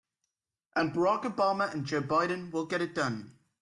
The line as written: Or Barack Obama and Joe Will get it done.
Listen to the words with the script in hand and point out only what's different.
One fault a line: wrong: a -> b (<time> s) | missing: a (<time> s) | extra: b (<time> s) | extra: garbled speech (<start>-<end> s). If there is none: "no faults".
wrong: Or -> And (0.8 s)
extra: Biden (2.0 s)